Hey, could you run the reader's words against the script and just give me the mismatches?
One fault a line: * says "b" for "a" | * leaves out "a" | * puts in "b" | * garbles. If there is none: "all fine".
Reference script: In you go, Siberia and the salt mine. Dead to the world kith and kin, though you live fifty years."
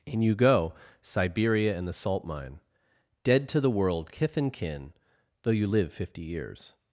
all fine